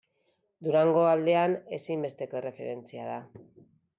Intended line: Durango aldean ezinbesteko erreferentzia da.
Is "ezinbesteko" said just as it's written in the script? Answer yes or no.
yes